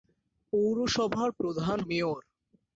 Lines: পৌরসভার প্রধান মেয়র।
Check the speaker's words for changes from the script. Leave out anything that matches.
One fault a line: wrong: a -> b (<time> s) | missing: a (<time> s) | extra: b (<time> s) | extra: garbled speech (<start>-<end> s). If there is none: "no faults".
no faults